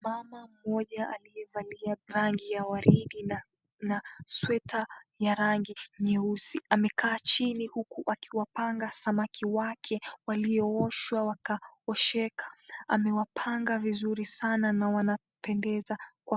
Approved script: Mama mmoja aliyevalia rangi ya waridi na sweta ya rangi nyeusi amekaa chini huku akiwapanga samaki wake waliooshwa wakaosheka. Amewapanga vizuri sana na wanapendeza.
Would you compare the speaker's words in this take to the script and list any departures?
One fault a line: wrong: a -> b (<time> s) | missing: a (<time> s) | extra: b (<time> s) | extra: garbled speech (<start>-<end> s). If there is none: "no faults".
no faults